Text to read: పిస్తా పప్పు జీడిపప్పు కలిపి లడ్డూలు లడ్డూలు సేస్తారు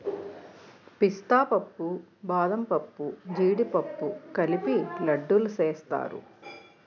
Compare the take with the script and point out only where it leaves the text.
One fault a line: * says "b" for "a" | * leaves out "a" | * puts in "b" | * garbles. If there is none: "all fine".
* puts in "బాదంపప్పు"
* leaves out "లడ్డూలు"